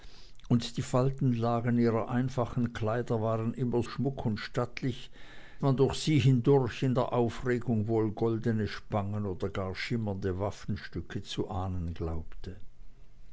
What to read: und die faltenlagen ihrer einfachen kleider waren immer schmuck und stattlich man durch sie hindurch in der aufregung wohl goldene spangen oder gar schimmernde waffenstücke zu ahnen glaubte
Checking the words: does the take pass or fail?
pass